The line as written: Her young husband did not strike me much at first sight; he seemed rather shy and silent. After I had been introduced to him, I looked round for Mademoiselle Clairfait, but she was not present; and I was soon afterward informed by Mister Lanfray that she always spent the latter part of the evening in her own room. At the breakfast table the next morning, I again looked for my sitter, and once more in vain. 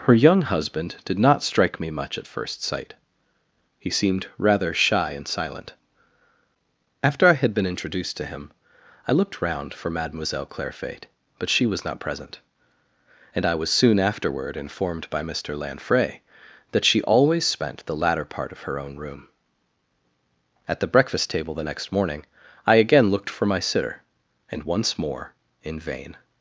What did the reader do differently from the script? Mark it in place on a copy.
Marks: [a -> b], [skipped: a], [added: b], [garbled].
Her young husband did not strike me much at first sight; he seemed rather shy and silent. After I had been introduced to him, I looked round for Mademoiselle Clairfait, but she was not present; and I was soon afterward informed by Mister Lanfray that she always spent the latter part of [skipped: the evening in] her own room. At the breakfast table the next morning, I again looked for my sitter, and once more in vain.